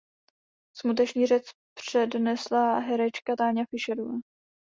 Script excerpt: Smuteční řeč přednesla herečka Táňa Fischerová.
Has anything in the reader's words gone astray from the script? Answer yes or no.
no